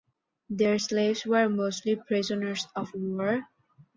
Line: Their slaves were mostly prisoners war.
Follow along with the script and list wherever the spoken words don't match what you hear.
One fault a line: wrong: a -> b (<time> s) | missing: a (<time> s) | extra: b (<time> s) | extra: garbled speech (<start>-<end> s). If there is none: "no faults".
extra: of (2.7 s)